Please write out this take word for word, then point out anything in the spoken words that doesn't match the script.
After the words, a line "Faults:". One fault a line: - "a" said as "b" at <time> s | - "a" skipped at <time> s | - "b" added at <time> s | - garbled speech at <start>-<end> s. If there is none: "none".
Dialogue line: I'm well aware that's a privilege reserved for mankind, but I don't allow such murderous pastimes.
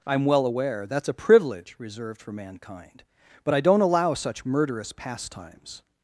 I'm well aware that's a privilege reserved for mankind, but I don't allow such murderous pastimes.
Faults:
none